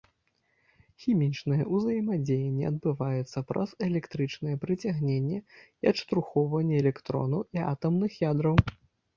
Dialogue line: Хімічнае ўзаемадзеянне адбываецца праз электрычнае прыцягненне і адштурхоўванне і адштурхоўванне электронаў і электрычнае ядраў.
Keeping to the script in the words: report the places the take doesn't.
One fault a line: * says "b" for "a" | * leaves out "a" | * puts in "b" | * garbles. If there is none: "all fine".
* leaves out "і адштурхоўванне"
* says "атамных" for "электрычнае"